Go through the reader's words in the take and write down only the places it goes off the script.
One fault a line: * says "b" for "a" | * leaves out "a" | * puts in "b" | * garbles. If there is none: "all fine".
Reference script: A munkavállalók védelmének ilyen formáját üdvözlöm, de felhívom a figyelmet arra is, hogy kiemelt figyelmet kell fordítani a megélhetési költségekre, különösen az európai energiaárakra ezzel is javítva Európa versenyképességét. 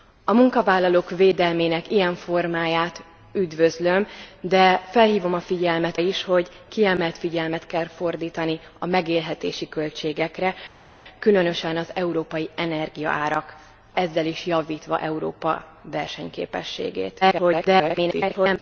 * leaves out "arra"
* garbles